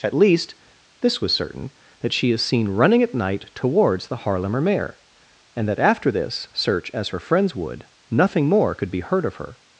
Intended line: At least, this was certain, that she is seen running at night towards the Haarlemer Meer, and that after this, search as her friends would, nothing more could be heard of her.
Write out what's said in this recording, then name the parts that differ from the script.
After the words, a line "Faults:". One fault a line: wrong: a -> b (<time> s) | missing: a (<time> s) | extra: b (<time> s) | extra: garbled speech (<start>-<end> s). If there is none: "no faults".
At least, this was certain, that she is seen running at night towards the Haarlemer Meer, and that after this, search as her friends would, nothing more could be heard of her.
Faults:
no faults